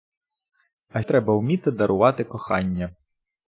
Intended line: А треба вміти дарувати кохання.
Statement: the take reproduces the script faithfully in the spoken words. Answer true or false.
true